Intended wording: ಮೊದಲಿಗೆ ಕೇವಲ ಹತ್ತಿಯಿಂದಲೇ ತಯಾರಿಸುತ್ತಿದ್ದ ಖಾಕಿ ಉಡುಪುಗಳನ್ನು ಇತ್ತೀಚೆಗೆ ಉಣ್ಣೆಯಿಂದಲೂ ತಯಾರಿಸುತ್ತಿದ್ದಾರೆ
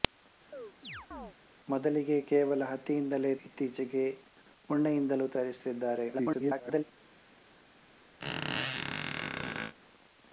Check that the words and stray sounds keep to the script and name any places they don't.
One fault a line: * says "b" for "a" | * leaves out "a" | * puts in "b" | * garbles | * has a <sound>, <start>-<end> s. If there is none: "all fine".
* has a chirp, 0.5-1.3 s
* leaves out "ತಯಾರಿಸುತ್ತಿದ್ದ ಖಾಕಿ ಉಡುಪುಗಳನ್ನು"
* garbles
* has a squeak, 8.2-9.7 s